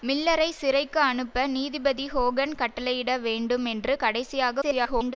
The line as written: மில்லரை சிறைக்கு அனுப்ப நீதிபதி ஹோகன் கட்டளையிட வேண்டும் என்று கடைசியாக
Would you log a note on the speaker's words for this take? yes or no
yes